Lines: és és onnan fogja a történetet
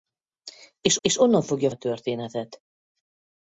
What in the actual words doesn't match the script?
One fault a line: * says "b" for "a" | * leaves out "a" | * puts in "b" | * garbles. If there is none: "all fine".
all fine